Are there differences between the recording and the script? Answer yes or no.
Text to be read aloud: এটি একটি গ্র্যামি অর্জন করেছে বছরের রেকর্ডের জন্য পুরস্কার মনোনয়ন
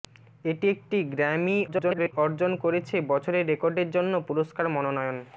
yes